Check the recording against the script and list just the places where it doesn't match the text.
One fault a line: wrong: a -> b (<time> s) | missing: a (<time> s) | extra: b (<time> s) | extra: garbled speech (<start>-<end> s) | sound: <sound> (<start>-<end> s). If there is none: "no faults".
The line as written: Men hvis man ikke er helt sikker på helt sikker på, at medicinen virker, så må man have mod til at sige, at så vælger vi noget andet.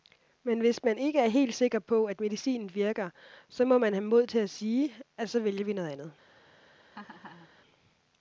missing: helt sikker på (2.0 s)
sound: laugh (6.9-7.5 s)